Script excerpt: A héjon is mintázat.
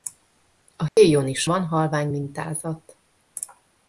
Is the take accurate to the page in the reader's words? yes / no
no